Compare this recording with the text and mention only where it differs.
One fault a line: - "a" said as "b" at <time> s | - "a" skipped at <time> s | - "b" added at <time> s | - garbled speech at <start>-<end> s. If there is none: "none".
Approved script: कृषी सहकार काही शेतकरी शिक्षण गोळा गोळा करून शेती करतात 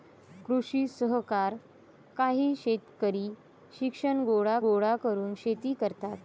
none